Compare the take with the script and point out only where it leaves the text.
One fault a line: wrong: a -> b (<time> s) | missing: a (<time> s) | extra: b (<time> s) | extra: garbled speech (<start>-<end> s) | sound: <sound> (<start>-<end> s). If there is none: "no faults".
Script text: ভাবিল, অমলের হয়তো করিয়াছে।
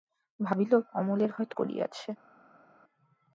no faults